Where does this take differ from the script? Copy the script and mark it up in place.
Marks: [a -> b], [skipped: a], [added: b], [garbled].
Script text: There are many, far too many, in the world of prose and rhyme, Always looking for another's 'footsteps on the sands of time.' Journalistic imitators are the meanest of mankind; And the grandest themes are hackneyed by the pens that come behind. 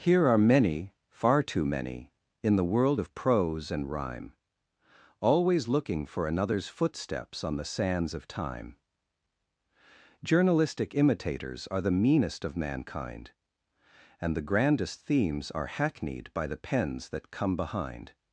[There -> Here] are many, far too many, in the world of prose and rhyme, Always looking for another's 'footsteps on the sands of time.' Journalistic imitators are the meanest of mankind; And the grandest themes are hackneyed by the pens that come behind.